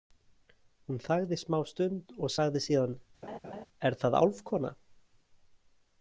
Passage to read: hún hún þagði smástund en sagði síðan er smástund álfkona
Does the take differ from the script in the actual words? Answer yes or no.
yes